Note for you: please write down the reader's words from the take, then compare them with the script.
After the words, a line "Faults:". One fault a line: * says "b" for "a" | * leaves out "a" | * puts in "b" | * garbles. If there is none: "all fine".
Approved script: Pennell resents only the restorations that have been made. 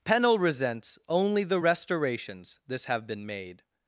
Pennell resents only the restorations this have been made.
Faults:
* says "this" for "that"